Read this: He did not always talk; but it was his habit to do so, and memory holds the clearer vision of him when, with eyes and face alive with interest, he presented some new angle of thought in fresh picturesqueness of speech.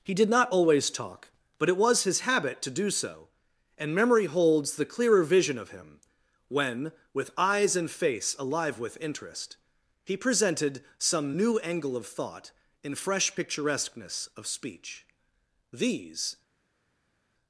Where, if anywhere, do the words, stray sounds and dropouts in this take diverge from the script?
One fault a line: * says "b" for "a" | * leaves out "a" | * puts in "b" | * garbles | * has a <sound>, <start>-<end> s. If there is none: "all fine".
* puts in "These"